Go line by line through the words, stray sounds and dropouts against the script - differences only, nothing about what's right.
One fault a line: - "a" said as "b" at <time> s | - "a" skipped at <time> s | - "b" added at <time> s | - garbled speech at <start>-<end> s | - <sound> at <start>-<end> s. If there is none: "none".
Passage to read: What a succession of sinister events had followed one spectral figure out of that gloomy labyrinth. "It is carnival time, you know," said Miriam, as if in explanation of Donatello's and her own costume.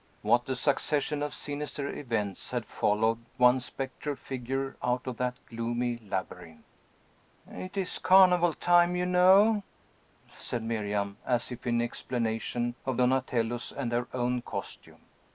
none